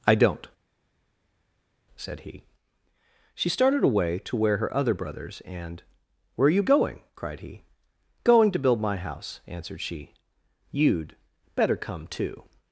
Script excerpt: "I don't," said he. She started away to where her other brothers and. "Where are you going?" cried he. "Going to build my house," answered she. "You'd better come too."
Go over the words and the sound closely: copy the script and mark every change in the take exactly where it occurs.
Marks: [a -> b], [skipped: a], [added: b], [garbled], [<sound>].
"I don't," said he. She started away to where her other brothers and. "Where are you going?" cried he. "Going to build my house," answered she. "You'd better come too."